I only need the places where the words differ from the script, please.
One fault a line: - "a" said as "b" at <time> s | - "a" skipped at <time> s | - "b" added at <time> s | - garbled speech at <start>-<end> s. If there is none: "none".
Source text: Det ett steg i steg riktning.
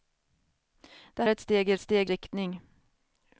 none